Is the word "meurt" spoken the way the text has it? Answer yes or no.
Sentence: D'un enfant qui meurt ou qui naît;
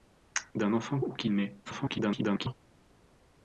no